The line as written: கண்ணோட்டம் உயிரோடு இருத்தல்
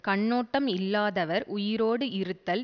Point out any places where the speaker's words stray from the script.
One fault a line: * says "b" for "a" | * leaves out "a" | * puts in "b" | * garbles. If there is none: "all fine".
* puts in "இல்லாதவர்"